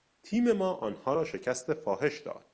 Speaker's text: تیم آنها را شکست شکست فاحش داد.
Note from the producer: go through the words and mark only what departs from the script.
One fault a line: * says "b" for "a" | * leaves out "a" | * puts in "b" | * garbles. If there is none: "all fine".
* puts in "ما"
* leaves out "شکست"